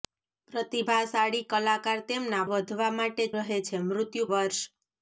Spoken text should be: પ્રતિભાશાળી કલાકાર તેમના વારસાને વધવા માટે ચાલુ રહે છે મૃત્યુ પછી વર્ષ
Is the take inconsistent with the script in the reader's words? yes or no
yes